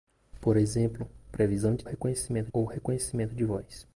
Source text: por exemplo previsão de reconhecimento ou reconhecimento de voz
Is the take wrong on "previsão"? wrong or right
right